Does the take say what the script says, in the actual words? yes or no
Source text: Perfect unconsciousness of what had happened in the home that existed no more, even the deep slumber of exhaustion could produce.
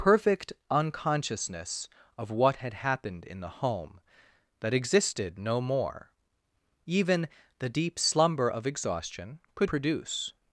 yes